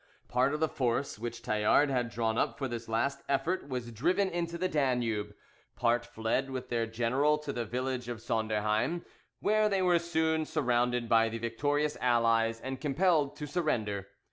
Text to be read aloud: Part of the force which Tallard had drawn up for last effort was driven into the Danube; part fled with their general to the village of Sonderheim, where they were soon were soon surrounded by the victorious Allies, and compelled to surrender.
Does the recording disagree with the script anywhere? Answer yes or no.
yes